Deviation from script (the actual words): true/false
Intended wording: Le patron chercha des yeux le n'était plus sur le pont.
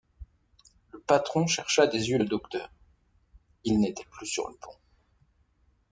true